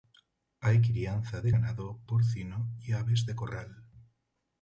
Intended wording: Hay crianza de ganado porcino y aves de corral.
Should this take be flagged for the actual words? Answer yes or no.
no